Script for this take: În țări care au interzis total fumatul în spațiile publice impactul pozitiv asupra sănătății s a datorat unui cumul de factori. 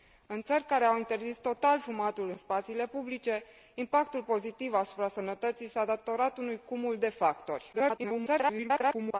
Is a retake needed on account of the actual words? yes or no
yes